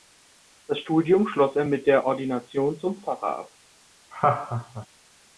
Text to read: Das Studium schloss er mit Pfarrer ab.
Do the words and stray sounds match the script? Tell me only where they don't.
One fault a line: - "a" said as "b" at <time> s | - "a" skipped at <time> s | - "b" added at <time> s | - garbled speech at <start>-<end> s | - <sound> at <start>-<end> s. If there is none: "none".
- "der Ordination zum" added at 1.8 s
- laugh at 4.1-4.9 s